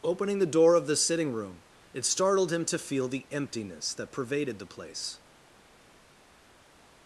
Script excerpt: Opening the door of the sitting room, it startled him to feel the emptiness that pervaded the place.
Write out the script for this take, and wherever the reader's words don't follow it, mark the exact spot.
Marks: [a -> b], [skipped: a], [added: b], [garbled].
Opening the door of the sitting room, it startled him to feel the emptiness that pervaded the place.